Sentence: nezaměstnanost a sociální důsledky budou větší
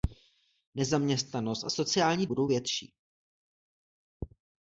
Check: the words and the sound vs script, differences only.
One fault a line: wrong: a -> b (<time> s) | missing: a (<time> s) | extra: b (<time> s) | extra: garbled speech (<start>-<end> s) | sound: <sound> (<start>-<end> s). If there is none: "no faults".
missing: důsledky (2.3 s)